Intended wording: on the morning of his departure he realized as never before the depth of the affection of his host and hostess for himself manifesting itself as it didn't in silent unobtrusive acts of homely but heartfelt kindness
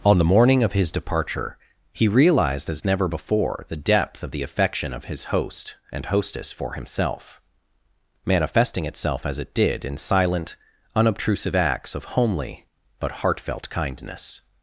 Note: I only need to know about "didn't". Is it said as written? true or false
false